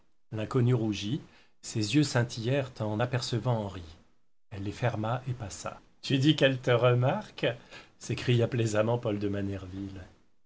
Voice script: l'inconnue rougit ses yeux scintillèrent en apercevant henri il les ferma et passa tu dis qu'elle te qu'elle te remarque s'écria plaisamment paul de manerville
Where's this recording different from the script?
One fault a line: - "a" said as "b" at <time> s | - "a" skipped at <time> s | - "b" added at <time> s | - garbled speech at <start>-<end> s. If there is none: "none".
- "il" said as "elle" at 4.5 s
- "qu'elle te" skipped at 6.7 s